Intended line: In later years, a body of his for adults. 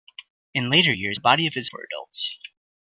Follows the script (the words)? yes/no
yes